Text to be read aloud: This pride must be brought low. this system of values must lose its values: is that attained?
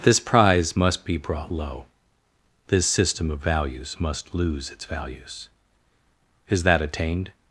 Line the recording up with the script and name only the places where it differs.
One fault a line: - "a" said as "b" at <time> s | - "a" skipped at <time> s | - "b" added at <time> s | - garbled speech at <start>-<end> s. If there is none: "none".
- "pride" said as "prize" at 0.2 s